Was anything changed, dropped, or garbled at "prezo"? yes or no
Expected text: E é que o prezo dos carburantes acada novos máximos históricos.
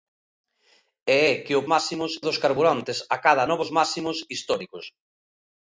yes